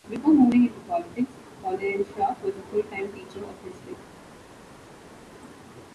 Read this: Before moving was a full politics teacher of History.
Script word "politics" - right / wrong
wrong